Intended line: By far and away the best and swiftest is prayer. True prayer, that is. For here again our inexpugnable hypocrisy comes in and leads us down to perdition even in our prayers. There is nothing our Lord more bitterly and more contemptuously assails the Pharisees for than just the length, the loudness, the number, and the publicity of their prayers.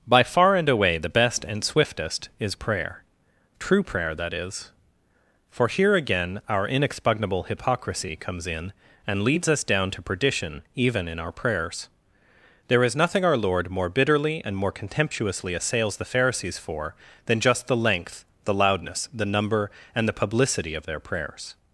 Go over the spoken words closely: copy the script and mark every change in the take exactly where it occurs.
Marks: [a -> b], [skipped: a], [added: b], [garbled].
By far and away the best and swiftest is prayer. True prayer, that is. For here again our inexpugnable hypocrisy comes in and leads us down to perdition even in our prayers. There is nothing our Lord more bitterly and more contemptuously assails the Pharisees for than just the length, the loudness, the number, and the publicity of their prayers.